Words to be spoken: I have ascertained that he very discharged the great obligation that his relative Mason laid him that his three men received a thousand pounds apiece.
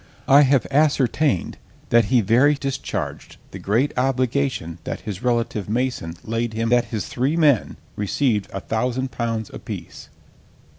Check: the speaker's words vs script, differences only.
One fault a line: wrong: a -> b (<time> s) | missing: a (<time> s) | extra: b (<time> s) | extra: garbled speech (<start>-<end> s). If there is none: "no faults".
no faults